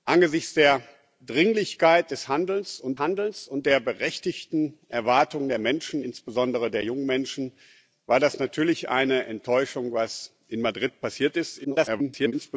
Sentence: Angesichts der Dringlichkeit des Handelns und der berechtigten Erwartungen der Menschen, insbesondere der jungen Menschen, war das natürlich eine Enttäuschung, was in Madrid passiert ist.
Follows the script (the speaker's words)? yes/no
no